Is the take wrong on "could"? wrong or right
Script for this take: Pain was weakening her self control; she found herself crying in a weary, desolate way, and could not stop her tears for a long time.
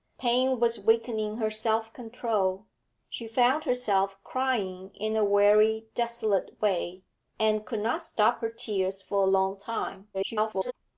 right